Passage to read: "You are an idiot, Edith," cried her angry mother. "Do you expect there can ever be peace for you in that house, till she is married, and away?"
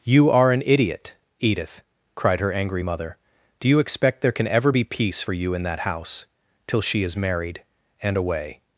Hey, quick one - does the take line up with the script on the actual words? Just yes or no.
yes